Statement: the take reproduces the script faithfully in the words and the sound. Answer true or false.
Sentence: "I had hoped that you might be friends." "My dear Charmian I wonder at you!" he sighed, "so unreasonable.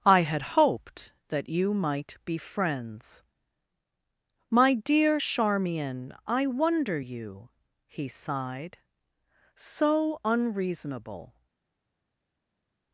false